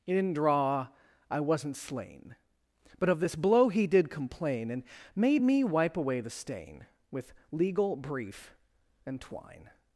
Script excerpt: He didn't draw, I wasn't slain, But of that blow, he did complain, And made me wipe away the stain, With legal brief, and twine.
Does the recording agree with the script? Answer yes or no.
no